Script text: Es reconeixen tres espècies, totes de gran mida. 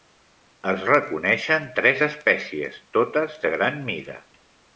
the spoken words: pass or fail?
pass